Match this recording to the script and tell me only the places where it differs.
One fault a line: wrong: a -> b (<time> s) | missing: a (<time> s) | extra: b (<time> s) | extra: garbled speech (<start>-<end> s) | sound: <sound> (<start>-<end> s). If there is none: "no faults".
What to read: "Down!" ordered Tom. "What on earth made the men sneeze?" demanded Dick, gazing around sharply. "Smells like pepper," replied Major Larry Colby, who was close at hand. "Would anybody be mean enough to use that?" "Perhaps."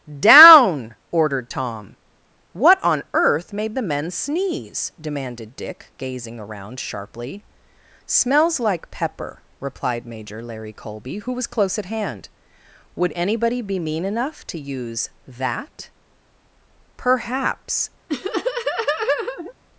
sound: laugh (18.1-19.5 s)